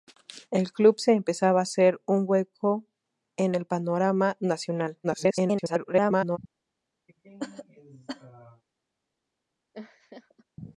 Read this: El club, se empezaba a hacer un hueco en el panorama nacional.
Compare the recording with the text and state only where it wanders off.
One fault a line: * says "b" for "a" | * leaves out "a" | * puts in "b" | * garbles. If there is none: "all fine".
* garbles